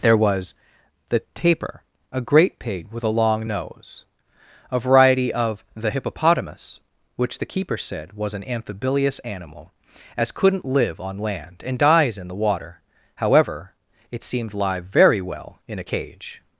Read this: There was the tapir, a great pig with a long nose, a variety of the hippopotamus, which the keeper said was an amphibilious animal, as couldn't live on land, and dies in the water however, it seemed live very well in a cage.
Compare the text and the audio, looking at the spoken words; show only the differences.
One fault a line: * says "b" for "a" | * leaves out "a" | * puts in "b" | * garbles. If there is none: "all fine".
all fine